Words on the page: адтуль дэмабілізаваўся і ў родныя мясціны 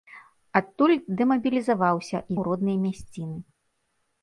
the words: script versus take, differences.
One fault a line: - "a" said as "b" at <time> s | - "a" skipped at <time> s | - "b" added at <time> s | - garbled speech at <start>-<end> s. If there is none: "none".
none